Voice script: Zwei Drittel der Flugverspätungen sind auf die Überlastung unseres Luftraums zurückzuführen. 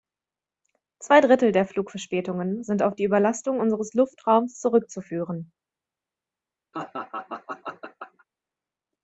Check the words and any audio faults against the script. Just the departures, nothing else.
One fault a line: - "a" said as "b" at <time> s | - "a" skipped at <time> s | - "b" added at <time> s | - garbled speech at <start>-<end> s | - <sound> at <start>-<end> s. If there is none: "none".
- laugh at 6.7-8.3 s